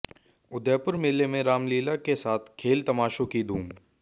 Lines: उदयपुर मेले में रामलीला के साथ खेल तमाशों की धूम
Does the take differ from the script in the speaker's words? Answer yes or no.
no